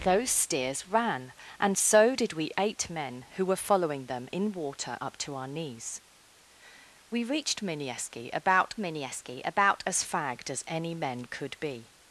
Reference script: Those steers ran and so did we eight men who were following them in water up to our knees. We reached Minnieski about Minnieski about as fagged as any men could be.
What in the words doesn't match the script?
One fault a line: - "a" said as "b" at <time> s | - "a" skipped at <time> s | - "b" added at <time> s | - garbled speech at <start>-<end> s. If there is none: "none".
none